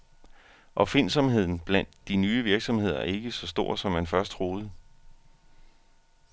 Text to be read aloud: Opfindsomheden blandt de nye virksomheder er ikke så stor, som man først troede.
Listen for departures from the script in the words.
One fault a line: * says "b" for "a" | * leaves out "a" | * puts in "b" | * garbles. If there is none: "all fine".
all fine